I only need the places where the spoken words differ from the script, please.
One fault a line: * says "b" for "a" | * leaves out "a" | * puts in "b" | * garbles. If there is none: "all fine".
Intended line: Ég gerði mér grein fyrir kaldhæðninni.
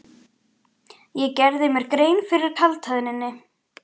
all fine